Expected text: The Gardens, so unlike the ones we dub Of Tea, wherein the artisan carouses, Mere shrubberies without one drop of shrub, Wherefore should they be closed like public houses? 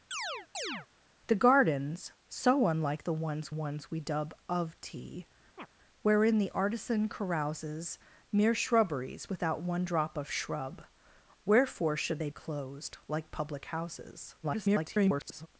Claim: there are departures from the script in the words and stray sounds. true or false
true